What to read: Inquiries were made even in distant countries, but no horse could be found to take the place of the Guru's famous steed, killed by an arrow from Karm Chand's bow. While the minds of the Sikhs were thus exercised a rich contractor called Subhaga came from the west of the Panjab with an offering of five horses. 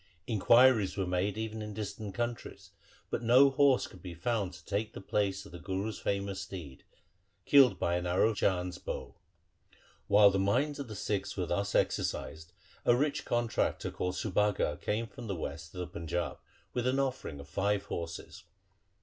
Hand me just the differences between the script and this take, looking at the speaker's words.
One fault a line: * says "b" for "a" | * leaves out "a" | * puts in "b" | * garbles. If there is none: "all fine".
* leaves out "from Karm"